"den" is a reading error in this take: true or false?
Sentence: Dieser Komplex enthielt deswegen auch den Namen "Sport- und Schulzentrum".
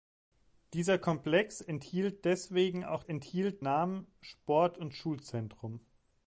true